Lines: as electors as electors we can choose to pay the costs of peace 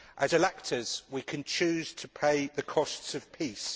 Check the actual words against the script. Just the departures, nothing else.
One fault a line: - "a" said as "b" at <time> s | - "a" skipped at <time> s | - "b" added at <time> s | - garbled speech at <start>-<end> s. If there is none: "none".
- "as electors" skipped at 1.0 s